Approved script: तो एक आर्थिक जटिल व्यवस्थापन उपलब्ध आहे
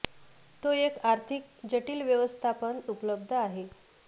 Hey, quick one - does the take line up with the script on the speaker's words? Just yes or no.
yes